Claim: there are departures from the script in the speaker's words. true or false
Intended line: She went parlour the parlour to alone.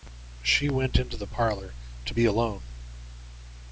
true